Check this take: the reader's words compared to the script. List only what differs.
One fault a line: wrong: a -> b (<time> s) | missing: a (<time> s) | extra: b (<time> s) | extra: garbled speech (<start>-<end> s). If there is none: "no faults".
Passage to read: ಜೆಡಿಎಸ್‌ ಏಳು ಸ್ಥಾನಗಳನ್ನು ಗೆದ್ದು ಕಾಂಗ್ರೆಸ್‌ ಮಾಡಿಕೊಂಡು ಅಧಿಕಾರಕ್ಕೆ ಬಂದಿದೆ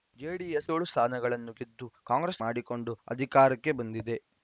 no faults